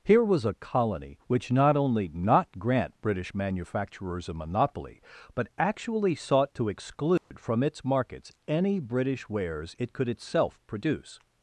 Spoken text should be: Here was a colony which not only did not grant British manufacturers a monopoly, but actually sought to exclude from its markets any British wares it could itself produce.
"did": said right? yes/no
no